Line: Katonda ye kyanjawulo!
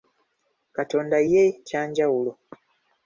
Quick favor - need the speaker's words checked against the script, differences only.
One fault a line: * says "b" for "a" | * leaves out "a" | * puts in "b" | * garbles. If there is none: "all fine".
all fine